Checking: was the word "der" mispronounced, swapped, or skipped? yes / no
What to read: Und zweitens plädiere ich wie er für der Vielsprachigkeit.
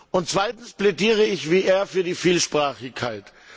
yes